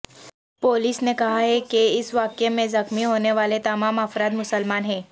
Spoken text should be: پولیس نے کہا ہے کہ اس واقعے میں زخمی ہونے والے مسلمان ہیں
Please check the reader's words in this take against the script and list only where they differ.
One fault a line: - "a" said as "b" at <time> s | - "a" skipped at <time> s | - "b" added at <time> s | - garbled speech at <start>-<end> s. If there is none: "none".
- "تمام افراد" added at 3.6 s